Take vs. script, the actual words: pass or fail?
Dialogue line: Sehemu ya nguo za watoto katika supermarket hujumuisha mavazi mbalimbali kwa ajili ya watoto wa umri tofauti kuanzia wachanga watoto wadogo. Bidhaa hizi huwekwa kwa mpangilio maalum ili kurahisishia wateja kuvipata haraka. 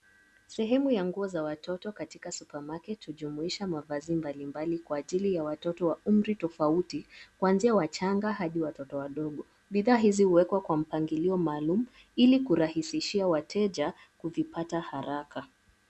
fail